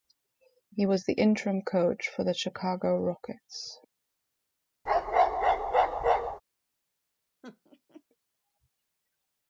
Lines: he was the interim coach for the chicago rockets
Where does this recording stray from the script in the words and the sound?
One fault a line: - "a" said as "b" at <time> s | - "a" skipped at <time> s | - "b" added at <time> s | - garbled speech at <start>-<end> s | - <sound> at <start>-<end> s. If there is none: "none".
- bark at 4.9-6.4 s
- laugh at 7.4-8.0 s